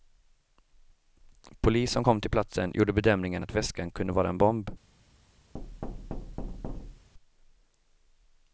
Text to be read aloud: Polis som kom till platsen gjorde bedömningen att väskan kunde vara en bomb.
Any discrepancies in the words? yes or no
no